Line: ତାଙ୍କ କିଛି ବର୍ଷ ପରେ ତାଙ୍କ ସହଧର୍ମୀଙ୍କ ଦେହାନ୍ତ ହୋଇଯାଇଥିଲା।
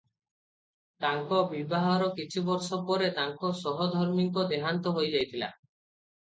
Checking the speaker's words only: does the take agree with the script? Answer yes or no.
no